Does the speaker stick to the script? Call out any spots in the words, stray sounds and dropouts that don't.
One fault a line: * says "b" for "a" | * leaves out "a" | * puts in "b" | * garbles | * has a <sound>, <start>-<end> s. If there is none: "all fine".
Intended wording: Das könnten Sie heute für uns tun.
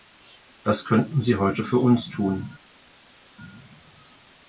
all fine